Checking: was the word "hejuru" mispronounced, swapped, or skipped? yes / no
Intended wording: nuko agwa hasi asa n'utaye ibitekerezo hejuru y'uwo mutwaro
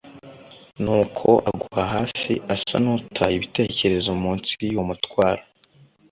yes